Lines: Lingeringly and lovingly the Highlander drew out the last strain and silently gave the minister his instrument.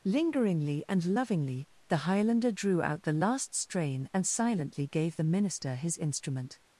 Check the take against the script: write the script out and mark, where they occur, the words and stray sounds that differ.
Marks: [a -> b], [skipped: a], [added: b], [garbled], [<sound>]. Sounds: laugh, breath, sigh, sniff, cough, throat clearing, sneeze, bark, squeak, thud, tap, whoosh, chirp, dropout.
Lingeringly and lovingly the Highlander drew out the last strain and silently gave the minister his instrument.